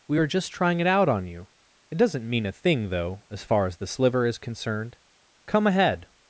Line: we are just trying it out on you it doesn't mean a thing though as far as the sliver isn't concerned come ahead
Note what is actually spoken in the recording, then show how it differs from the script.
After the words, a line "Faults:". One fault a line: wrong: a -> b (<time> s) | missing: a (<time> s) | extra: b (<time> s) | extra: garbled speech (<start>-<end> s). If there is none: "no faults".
we are just trying it out on you it doesn't mean a thing though as far as the sliver is concerned come ahead
Faults:
wrong: isn't -> is (4.3 s)